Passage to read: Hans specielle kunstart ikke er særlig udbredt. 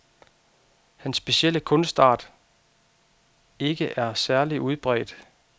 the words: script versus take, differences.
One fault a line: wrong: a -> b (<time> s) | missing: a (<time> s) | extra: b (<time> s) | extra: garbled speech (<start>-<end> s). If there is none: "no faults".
no faults